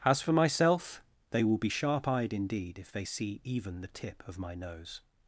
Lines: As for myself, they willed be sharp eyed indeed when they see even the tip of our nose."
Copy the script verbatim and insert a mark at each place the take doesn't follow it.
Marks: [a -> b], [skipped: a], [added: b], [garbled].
As for myself, they [willed -> will] be sharp eyed indeed [when -> if] they see even the tip of [our -> my] nose."